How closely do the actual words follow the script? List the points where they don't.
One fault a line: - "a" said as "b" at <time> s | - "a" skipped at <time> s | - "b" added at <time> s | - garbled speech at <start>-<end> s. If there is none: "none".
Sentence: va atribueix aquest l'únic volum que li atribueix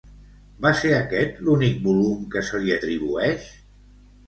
- "atribueix" said as "ser" at 0.8 s
- "se" added at 2.5 s